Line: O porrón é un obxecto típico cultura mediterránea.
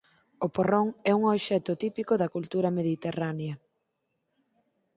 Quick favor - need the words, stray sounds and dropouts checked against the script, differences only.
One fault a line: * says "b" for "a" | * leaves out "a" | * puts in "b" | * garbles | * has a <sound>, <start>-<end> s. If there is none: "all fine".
* puts in "da"